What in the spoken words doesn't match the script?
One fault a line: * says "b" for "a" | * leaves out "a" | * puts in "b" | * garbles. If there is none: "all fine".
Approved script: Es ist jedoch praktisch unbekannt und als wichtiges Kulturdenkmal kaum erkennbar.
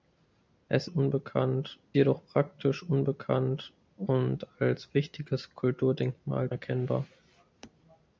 * says "unbekannt" for "ist"
* leaves out "kaum"